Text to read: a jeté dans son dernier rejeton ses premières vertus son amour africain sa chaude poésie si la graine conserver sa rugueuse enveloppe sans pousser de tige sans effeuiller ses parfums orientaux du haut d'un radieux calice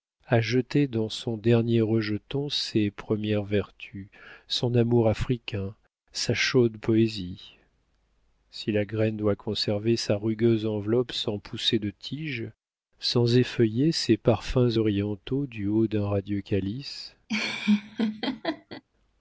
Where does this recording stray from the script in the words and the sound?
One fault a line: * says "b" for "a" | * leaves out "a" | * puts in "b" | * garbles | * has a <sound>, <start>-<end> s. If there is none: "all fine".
* puts in "doit"
* has a laugh, 17.3-18.8 s